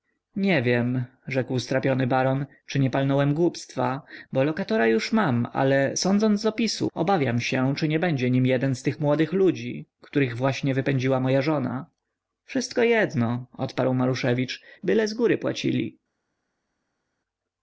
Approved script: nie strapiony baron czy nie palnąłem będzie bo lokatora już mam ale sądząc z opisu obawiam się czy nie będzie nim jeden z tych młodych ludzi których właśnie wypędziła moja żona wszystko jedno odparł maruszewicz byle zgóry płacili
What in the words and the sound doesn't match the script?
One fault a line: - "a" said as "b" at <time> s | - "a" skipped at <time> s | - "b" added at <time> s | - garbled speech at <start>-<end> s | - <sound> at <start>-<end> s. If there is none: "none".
- "wiem rzekł" added at 0.6 s
- "będzie" said as "głupstwa" at 3.3 s